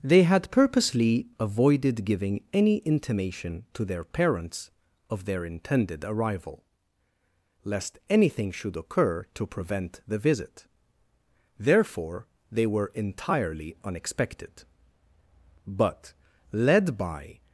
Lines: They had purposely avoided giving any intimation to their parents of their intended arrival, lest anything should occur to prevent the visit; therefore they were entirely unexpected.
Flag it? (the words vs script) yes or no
yes